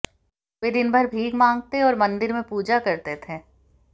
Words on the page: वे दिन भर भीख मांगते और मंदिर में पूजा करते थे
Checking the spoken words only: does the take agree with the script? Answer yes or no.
yes